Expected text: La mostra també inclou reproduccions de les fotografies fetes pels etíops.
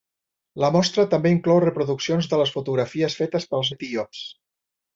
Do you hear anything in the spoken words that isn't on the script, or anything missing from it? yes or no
no